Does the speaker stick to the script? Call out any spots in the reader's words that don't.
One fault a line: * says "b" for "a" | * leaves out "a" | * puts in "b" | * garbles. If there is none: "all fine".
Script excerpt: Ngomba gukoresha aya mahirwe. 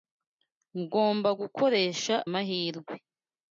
* leaves out "aya"